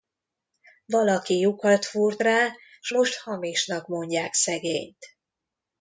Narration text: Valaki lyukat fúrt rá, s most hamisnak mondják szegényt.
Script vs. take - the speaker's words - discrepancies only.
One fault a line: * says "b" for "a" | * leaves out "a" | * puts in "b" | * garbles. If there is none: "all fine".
all fine